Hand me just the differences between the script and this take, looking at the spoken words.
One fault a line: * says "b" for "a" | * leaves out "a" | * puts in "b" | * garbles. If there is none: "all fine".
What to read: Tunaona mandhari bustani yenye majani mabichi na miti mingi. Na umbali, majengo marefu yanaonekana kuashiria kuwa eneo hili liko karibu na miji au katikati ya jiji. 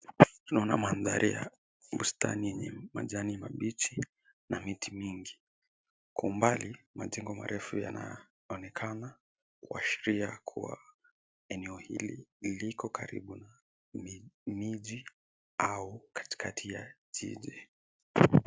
* puts in "ya"
* says "Kwa" for "Na"